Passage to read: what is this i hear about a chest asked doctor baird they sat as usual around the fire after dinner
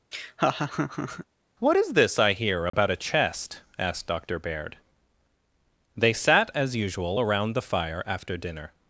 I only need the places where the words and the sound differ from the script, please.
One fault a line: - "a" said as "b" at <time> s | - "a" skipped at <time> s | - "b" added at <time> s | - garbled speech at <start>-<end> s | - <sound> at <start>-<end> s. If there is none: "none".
- laugh at 0.1-1.3 s
- dropout at 2.7-2.7 s